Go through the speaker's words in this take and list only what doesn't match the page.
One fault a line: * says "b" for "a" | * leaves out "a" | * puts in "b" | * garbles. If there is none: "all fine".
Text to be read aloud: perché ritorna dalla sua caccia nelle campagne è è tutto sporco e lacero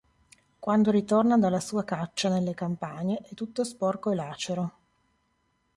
* says "quando" for "perché"
* leaves out "è"